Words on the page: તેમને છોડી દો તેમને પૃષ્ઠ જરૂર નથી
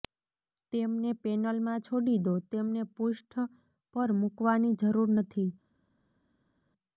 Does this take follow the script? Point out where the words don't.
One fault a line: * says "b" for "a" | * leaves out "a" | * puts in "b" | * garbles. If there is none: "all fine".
* puts in "પેનલમાં"
* puts in "પર મૂકવાની"